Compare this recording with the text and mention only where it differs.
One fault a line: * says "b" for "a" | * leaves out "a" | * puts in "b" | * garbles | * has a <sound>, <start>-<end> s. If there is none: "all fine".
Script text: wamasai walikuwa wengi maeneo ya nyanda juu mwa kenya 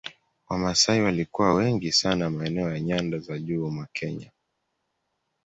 * puts in "sana"
* puts in "za"